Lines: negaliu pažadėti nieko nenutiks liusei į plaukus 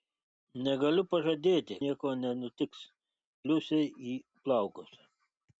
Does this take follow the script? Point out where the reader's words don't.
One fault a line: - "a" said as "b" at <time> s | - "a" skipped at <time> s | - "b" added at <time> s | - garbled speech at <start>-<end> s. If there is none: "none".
none